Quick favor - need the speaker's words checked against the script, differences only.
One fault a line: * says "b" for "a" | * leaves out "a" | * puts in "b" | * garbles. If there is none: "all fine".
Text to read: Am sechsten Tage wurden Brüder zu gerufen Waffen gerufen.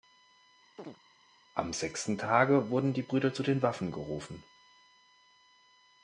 * puts in "die"
* says "den" for "gerufen"